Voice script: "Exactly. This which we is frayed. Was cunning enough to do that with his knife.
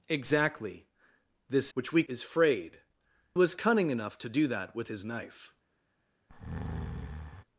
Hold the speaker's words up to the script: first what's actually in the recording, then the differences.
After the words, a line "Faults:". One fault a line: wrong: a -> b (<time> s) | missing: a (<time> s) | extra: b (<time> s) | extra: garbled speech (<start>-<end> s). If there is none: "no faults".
"Exactly. This which we is frayed. Was cunning enough to do that with his knife.
Faults:
no faults